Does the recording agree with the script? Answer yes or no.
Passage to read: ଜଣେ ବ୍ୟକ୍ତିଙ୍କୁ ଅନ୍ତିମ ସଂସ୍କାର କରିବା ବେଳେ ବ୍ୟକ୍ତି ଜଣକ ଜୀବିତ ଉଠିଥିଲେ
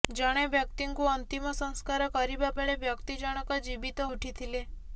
yes